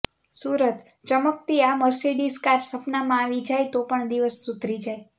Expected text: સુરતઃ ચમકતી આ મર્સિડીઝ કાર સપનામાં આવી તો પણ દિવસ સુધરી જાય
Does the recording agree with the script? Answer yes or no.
no